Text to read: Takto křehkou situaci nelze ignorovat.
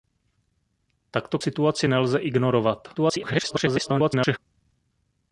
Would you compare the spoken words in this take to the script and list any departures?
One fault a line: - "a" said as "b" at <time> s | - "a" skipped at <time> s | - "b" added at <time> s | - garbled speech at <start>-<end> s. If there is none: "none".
- "křehkou" skipped at 1.4 s
- garbled speech at 3.0-4.4 s